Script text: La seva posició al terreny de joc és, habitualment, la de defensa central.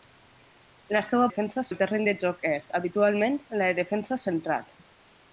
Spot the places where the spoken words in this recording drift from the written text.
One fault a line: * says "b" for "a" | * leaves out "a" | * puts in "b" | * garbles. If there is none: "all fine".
* says "defensa" for "posició"